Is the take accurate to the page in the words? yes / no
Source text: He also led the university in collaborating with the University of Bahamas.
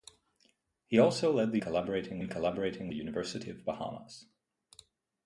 no